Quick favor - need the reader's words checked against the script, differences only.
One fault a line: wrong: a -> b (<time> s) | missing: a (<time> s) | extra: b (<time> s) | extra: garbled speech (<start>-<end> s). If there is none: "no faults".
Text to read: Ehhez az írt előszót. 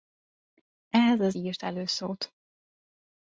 no faults